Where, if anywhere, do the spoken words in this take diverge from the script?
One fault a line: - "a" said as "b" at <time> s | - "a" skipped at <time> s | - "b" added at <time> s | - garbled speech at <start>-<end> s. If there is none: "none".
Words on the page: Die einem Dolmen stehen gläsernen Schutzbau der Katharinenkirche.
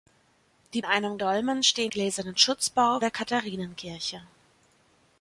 none